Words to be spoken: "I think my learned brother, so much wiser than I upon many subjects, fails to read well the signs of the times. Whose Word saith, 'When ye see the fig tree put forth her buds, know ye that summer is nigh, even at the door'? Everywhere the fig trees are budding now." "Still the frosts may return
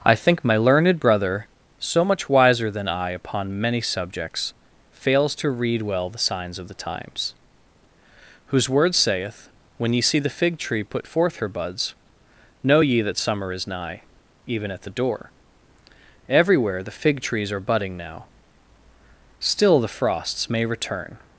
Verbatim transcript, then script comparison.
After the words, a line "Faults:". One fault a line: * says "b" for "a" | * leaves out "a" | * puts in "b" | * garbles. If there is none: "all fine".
"I think my learned brother, so much wiser than I upon many subjects, fails to read well the signs of the times. Whose Word saith, 'When ye see the fig tree put forth her buds, know ye that summer is nigh, even at the door'? Everywhere the fig trees are budding now." "Still the frosts may return
Faults:
all fine